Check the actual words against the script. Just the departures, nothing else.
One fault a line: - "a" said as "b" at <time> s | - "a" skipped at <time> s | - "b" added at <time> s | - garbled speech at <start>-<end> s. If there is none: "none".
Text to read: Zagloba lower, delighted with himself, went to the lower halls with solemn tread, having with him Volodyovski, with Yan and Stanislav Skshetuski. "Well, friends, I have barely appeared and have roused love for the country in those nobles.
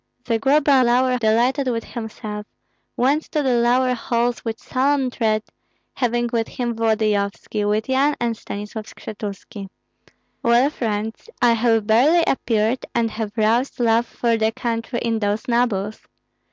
none